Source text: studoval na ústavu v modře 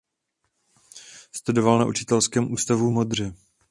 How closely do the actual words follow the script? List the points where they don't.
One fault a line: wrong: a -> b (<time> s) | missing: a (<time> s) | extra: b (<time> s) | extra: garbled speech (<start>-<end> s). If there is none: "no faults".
extra: učitelském (1.9 s)